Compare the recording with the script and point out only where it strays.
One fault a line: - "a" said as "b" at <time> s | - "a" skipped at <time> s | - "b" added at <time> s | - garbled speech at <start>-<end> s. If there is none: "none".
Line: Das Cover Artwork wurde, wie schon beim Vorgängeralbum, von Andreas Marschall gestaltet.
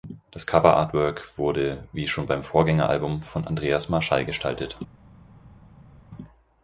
none